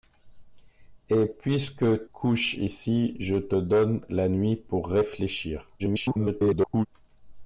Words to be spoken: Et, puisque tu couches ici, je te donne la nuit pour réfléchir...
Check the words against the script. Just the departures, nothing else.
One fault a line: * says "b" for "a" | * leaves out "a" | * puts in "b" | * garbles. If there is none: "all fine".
* leaves out "tu"
* garbles